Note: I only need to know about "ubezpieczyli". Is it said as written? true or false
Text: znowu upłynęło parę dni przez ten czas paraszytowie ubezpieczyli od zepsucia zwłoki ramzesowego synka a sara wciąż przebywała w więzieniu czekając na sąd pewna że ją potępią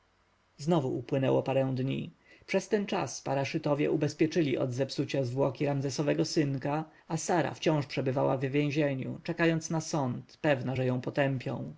true